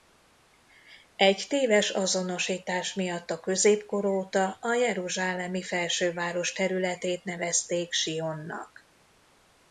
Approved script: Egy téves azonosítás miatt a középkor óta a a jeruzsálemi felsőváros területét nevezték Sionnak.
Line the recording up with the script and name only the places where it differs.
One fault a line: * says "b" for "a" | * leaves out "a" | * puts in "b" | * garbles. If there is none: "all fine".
* leaves out "a"